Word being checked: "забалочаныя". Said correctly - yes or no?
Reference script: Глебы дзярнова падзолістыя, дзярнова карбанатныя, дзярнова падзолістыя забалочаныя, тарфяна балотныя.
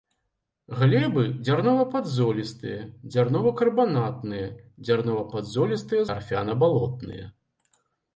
no